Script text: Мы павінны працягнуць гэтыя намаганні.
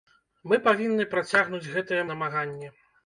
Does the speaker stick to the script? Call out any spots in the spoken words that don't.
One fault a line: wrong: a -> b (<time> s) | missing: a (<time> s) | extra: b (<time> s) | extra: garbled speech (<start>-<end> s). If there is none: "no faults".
no faults